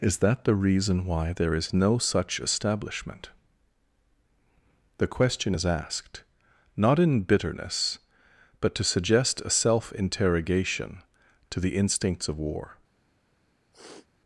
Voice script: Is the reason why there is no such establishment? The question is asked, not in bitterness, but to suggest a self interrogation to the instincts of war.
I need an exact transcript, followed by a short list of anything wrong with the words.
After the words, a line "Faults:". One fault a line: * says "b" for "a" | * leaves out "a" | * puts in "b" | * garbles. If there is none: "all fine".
Is that the reason why there is no such establishment? The question is asked, not in bitterness, but to suggest a self interrogation to the instincts of war.
Faults:
* puts in "that"